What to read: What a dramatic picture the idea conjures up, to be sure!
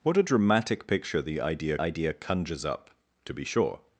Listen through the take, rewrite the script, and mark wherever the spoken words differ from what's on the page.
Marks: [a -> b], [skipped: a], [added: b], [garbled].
What a dramatic picture the idea [added: idea] conjures up, to be sure!